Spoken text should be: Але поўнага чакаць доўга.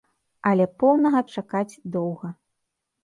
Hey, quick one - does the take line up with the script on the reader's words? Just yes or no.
yes